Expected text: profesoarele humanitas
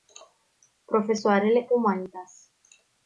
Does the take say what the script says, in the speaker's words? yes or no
yes